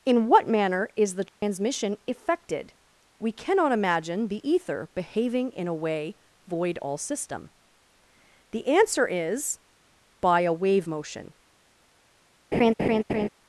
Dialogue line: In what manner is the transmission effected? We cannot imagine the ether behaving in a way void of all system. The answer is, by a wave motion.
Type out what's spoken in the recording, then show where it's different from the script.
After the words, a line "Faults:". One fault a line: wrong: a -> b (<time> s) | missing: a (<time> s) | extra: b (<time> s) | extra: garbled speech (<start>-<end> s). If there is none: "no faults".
In what manner is the transmission effected? We cannot imagine the ether behaving in a way void all system. The answer is, by a wave motion.
Faults:
missing: of (6.8 s)